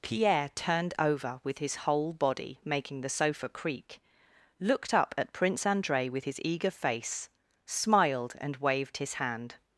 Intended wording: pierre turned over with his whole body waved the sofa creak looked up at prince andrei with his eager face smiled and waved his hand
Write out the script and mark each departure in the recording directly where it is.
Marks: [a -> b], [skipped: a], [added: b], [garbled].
pierre turned over with his whole body [waved -> making] the sofa creak looked up at prince andrei with his eager face smiled and waved his hand